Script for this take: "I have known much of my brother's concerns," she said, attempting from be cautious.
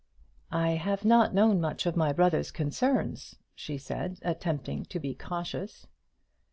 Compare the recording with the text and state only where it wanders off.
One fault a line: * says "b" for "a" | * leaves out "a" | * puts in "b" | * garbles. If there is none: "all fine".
* puts in "not"
* says "to" for "from"